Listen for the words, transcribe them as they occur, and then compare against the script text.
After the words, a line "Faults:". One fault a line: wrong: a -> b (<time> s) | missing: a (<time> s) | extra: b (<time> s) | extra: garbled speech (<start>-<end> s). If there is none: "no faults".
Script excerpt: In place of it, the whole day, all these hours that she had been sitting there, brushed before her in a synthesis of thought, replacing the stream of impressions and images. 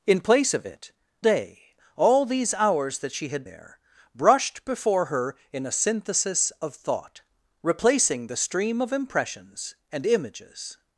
In place of it, day, all these hours that she had there, brushed before her in a synthesis of thought, replacing the stream of impressions and images.
Faults:
missing: the whole (0.9 s)
missing: been sitting (3.5 s)